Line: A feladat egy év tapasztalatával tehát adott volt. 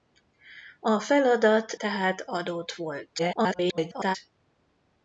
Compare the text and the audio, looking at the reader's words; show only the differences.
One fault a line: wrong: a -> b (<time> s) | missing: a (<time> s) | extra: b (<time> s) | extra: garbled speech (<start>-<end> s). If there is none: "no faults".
missing: egy év tapasztalatával (1.7 s)
extra: garbled speech (3.2-4.2 s)